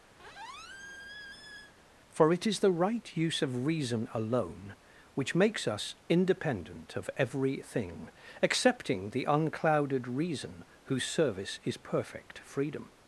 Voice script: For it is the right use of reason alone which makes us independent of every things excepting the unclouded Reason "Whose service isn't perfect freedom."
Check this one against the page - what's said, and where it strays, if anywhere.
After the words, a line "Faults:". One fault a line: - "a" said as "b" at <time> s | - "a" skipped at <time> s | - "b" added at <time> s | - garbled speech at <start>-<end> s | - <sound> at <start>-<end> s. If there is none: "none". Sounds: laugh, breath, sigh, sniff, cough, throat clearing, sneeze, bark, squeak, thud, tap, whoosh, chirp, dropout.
For it is the right use of reason alone which makes us independent of every thing excepting the unclouded Reason "Whose service is perfect freedom."
Faults:
- squeak at 0.2-1.7 s
- "things" said as "thing" at 7.6 s
- "isn't" said as "is" at 11.6 s